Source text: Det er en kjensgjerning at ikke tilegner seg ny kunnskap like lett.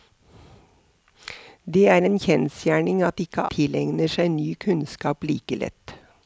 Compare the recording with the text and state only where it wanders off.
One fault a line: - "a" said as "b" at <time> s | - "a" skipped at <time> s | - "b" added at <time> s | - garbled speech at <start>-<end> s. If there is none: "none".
none